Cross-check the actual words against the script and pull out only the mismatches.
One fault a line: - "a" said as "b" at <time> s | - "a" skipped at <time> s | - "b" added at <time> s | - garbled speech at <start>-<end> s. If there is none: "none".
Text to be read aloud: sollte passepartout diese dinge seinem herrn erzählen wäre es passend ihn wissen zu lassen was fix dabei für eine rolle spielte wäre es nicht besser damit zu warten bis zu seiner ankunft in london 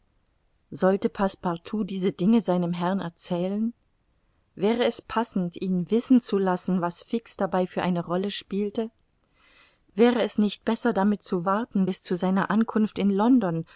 none